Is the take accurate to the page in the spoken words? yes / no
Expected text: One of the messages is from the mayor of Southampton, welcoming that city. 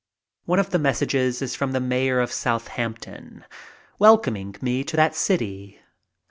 no